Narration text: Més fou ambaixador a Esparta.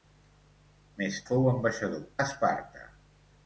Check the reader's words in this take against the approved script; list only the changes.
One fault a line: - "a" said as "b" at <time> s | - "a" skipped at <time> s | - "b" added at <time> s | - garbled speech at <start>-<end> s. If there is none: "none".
none